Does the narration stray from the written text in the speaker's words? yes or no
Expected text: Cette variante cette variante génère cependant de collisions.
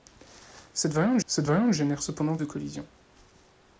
no